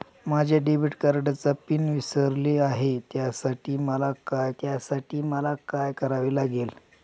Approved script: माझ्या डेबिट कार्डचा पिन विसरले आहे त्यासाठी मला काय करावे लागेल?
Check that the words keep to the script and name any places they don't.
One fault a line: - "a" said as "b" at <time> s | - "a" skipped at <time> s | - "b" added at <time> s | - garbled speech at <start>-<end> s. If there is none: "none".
- "त्यासाठी मला काय" added at 4.6 s